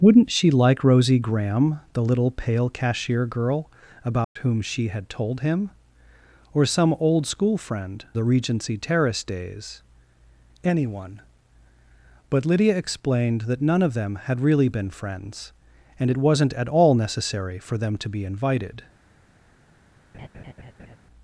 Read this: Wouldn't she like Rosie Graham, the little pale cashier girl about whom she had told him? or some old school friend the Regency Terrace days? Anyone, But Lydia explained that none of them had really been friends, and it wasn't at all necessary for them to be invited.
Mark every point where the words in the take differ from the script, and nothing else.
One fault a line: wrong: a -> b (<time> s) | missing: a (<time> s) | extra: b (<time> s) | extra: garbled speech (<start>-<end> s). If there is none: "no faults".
no faults